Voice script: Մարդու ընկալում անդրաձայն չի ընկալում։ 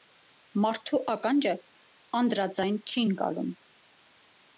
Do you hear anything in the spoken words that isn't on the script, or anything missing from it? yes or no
yes